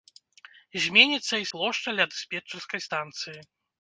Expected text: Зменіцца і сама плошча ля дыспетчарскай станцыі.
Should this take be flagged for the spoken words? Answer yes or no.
yes